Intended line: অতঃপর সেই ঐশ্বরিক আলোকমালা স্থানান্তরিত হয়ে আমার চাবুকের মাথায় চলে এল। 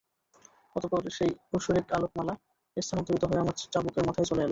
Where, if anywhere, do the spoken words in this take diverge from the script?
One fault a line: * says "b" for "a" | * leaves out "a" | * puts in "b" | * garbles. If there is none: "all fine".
all fine